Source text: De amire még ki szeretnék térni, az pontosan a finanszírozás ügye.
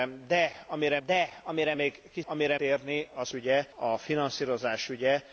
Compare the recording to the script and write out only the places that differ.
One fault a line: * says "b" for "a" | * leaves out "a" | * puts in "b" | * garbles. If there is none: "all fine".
* puts in "de amire"
* says "amire" for "szeretnék"
* says "ügye" for "pontosan"